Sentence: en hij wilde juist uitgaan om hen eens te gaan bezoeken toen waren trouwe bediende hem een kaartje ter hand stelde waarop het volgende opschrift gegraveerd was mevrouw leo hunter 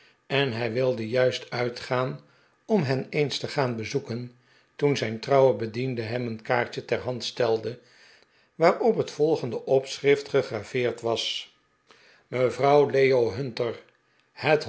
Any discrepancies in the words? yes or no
yes